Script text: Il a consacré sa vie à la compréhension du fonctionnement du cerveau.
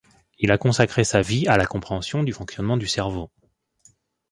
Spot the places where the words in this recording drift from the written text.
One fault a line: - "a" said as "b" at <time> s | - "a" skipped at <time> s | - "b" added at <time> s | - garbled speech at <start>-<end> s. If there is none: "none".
none